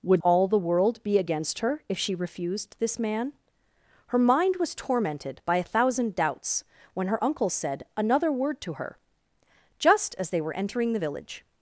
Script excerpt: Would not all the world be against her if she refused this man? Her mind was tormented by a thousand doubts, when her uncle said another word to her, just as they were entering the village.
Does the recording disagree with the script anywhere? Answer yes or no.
yes